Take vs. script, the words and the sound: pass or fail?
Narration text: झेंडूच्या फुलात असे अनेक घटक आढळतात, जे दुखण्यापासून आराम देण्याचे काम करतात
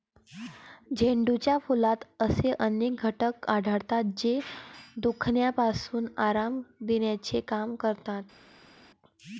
pass